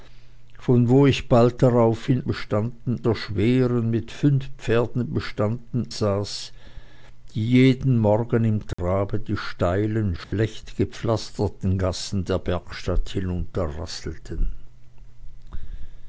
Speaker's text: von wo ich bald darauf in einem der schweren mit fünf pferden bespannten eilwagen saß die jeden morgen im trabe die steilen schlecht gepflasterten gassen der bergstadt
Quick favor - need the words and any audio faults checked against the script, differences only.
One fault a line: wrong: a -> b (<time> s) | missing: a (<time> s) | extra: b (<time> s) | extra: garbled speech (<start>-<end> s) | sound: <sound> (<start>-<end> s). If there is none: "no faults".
wrong: einem -> bespannten (2.2 s)
missing: eilwagen (5.9 s)
sound: dropout (8.7-8.8 s)
sound: dropout (10.2-10.3 s)